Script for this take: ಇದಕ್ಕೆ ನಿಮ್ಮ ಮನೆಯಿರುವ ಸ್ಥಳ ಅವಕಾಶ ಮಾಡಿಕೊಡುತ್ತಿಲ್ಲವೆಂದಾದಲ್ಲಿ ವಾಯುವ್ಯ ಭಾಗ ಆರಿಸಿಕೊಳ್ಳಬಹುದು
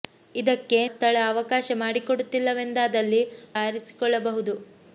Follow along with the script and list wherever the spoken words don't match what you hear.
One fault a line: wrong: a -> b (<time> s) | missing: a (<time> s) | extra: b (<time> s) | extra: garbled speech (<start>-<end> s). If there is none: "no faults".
missing: ನಿಮ್ಮ ಮನೆಯಿರುವ (0.8 s)
missing: ವಾಯುವ್ಯ ಭಾಗ (3.2 s)